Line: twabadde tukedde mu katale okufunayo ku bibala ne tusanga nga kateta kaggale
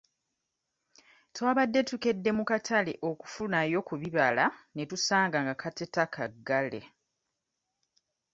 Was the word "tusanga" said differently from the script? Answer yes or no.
no